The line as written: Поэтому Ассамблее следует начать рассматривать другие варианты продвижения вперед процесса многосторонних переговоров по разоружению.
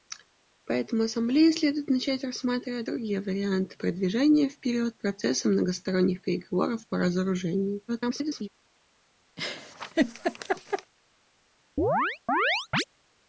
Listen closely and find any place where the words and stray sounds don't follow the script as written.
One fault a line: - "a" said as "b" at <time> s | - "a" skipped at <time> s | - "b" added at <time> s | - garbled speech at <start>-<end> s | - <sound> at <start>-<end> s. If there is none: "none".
- garbled speech at 7.9-8.5 s
- laugh at 9.4-10.9 s
- chirp at 11.8-12.8 s